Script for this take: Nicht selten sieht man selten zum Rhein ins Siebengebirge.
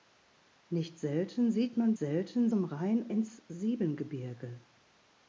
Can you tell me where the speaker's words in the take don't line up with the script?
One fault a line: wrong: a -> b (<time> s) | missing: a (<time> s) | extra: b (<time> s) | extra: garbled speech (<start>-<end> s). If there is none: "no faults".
no faults